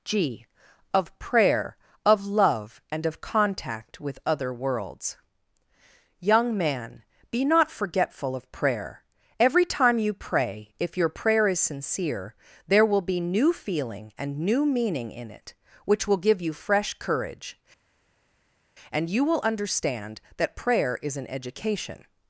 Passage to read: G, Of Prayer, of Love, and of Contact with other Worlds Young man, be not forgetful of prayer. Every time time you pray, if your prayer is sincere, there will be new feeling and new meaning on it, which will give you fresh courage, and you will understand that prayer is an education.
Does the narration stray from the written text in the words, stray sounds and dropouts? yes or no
yes